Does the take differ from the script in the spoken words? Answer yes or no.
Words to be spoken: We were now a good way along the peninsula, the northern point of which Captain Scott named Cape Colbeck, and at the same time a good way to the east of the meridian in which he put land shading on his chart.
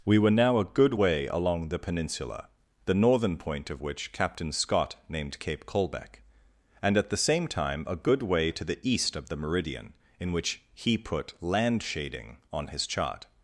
no